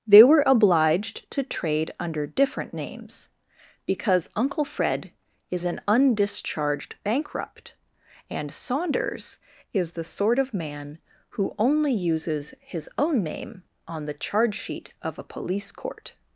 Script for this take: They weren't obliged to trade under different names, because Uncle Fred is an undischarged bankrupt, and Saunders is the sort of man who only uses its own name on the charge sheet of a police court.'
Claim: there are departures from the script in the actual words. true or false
true